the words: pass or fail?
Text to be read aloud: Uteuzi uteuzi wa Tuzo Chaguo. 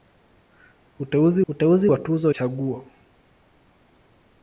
pass